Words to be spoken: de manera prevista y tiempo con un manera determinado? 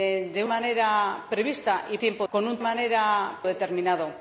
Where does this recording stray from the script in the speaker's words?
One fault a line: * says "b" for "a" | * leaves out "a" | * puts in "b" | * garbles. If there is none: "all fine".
all fine